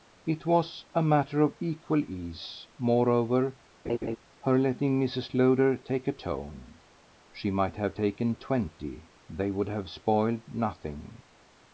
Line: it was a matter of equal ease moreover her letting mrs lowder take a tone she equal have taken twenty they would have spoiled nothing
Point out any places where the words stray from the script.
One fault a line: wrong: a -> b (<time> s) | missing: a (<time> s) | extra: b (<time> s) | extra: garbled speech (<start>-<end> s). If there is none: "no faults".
wrong: equal -> might (7.5 s)